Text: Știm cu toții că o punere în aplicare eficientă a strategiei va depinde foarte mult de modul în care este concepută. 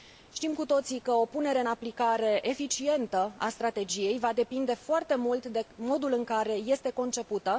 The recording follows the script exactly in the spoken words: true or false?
true